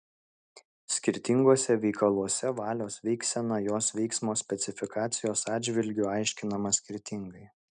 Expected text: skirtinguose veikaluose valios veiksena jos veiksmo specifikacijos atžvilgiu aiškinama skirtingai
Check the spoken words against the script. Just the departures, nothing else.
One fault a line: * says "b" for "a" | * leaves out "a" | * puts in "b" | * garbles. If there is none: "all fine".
all fine